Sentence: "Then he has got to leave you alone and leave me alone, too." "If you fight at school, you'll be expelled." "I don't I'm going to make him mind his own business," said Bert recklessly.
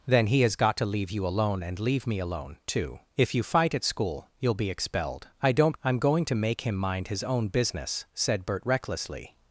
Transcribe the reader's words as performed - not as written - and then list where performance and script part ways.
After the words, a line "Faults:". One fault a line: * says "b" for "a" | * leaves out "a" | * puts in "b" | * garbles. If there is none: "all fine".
"Then he has got to leave you alone and leave me alone, too." "If you fight at school, you'll be expelled." "I don't I'm going to make him mind his own business," said Bert recklessly.
Faults:
all fine